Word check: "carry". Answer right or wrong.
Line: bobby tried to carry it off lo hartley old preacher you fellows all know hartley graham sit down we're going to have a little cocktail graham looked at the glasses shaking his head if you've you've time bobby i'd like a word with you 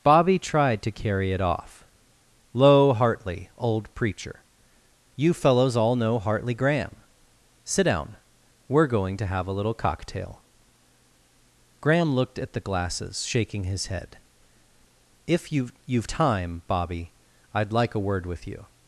right